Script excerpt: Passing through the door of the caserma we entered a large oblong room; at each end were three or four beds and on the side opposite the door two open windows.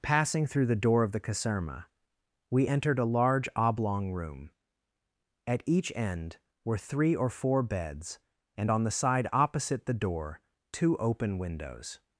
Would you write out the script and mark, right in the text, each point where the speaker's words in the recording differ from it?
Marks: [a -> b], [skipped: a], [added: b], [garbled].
Passing through the door of the caserma we entered a large oblong room; at each end were three or four beds and on the side opposite the door two open windows.